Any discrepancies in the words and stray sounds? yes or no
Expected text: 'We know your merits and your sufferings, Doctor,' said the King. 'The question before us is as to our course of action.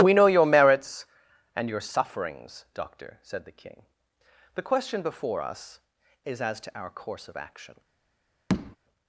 yes